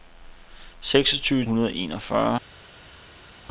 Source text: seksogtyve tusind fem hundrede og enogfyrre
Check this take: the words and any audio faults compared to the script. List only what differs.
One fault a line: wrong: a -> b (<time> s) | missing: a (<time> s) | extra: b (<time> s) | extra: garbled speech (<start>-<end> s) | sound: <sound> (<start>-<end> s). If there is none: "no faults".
missing: tusind fem (1.4 s)